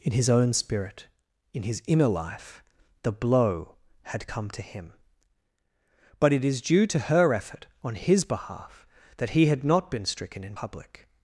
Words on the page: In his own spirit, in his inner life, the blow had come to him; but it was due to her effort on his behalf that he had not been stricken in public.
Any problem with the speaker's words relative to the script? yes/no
yes